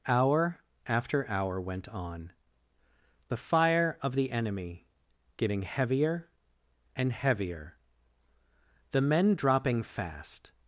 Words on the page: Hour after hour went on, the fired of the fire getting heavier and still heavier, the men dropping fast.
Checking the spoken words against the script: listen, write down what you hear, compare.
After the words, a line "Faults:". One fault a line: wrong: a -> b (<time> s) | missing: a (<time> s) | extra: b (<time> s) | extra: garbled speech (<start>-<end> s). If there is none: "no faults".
Hour after hour went on, the fire of the enemy getting heavier and heavier, the men dropping fast.
Faults:
wrong: fired -> fire (3.3 s)
wrong: fire -> enemy (4.3 s)
missing: still (7.1 s)